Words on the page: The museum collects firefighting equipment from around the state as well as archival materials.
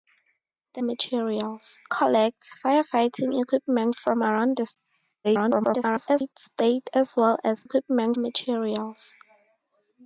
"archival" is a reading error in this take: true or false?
true